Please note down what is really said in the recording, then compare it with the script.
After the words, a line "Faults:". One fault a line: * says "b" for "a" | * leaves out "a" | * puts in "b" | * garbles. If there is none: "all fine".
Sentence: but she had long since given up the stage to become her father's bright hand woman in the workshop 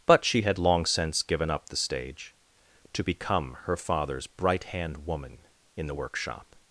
but she had long since given up the stage to become her father's bright hand woman in the workshop
Faults:
all fine